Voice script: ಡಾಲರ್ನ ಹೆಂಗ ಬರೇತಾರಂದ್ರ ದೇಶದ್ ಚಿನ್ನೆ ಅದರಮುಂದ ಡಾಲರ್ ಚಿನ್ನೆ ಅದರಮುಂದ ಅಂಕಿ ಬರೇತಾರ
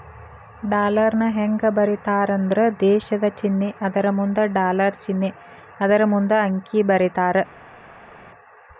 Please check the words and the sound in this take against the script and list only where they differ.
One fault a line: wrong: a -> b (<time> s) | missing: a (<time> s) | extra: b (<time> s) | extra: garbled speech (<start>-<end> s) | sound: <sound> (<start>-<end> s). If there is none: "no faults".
no faults